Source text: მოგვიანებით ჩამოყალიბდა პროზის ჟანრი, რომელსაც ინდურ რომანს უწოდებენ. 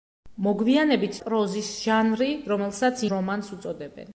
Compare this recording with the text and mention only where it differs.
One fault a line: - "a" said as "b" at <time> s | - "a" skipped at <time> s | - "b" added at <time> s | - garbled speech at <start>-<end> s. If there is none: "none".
- "ჩამოყალიბდა" skipped at 1.2 s
- "ინდურ" skipped at 3.1 s